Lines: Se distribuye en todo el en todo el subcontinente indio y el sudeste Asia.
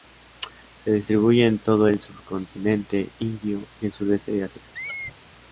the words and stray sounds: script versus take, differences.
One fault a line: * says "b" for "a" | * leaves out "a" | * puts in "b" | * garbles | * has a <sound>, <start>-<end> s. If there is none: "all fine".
* leaves out "en todo el"
* puts in "de"
* has a squeak, 4.7-5.1 s